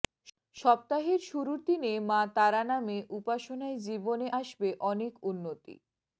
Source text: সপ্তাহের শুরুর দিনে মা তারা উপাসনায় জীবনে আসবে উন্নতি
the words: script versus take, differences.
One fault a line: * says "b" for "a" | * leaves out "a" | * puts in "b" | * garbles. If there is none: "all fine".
* puts in "নামে"
* puts in "অনেক"